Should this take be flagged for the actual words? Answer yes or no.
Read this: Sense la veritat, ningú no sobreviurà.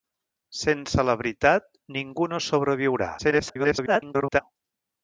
yes